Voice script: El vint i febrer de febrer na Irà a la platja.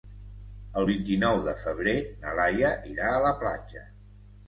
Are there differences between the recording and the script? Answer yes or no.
yes